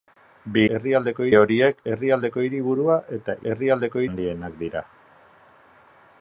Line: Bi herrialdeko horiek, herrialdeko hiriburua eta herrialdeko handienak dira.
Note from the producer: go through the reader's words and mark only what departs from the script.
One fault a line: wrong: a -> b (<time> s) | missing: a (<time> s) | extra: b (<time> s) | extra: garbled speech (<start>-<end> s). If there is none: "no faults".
no faults